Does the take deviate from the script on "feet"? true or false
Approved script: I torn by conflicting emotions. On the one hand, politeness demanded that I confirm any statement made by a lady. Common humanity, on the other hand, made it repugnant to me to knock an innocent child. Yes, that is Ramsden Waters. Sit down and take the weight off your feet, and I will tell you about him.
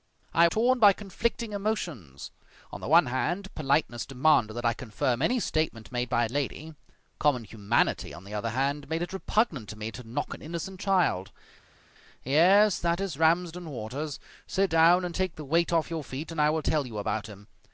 false